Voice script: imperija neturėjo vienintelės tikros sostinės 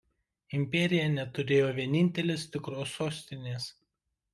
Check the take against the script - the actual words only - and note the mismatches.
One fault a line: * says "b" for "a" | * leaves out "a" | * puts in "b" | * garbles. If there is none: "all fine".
all fine